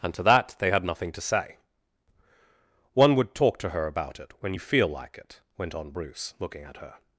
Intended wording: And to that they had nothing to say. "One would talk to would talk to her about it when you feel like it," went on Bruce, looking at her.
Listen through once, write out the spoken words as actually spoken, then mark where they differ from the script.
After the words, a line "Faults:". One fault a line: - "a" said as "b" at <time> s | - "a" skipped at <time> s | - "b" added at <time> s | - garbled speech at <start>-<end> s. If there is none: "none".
And to that they had nothing to say. "One would talk to her about it when you feel like it," went on Bruce, looking at her.
Faults:
- "would talk to" skipped at 3.7 s